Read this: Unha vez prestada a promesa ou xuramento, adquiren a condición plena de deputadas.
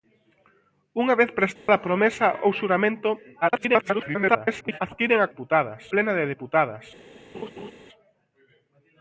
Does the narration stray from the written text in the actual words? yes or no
yes